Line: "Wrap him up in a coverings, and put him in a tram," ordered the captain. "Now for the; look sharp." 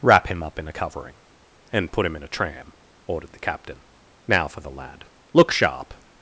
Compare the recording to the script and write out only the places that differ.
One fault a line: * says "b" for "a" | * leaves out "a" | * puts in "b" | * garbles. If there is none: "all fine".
* says "covering" for "coverings"
* puts in "lad"